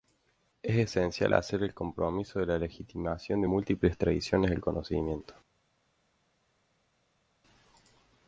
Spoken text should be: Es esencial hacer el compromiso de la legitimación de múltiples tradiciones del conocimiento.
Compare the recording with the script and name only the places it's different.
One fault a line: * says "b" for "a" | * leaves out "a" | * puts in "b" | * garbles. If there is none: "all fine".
all fine